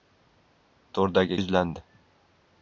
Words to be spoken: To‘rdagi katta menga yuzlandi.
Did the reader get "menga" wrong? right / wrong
wrong